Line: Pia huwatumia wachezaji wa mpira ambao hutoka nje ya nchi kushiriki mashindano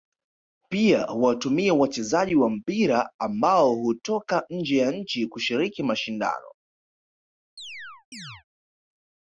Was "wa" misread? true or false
false